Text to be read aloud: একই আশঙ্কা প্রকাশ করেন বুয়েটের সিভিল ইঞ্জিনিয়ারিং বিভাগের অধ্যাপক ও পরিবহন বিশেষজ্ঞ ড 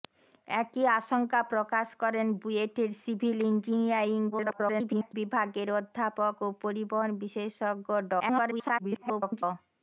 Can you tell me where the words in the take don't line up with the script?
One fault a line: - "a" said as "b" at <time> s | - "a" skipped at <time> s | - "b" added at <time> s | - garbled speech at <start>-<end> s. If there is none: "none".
- garbled speech at 4.3-5.1 s
- garbled speech at 8.2-9.4 s